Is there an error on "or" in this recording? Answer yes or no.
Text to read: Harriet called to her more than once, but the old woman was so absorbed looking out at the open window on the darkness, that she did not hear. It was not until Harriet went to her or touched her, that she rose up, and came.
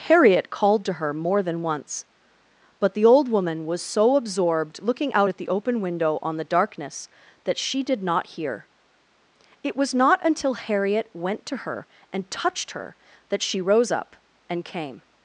yes